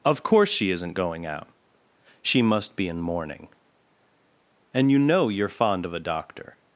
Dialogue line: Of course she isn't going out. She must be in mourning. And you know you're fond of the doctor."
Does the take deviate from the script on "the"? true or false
true